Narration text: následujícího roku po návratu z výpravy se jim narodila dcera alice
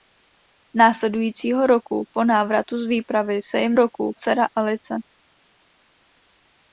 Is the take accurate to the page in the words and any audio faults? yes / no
no